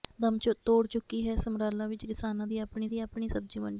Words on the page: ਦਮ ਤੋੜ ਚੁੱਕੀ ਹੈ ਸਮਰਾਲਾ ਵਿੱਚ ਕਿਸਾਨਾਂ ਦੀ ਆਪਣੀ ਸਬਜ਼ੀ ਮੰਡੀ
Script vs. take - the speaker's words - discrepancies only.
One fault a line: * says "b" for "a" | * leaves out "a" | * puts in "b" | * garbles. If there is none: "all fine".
* puts in "ਦੀ ਆਪਣੀ"